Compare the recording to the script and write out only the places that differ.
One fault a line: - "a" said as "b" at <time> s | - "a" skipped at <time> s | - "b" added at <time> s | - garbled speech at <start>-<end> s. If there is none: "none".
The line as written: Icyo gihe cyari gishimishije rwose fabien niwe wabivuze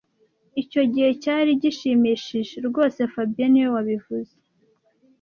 none